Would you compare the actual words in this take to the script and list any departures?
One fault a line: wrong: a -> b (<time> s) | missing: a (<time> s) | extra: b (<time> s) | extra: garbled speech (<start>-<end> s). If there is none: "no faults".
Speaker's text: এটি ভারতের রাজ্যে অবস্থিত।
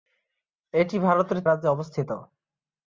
no faults